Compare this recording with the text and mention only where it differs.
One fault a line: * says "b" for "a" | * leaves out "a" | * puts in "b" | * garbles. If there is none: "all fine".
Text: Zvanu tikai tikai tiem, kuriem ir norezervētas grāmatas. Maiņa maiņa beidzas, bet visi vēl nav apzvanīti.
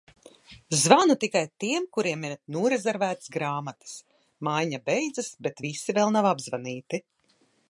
* leaves out "tikai"
* leaves out "maiņa"